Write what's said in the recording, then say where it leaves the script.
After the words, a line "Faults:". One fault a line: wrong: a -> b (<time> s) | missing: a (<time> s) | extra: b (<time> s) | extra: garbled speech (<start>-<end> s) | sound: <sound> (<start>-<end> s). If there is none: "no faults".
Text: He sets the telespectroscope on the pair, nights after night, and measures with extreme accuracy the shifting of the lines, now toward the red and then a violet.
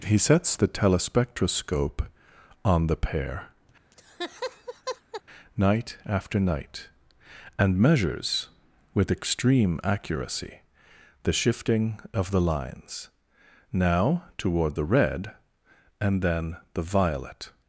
He sets the telespectroscope on the pair, night after night, and measures with extreme accuracy the shifting of the lines, now toward the red and then the violet.
Faults:
sound: laugh (3.9-5.2 s)
wrong: nights -> night (5.6 s)
wrong: a -> the (16.7 s)